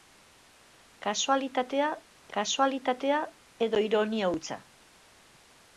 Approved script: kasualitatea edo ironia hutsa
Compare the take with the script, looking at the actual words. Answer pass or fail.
fail